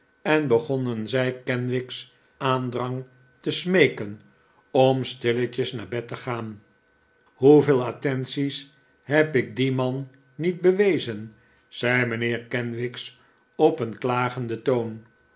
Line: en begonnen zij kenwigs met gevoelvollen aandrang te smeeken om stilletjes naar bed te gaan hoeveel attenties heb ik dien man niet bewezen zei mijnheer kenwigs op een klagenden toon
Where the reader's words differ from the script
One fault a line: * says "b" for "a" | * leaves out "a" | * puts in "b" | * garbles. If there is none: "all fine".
* leaves out "met gevoelvollen"